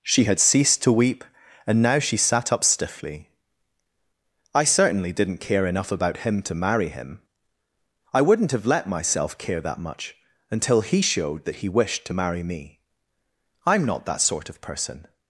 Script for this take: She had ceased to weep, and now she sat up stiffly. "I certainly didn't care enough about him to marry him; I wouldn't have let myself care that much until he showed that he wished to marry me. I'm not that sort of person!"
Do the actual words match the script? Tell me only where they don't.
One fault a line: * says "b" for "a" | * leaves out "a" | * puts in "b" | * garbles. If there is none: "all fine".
all fine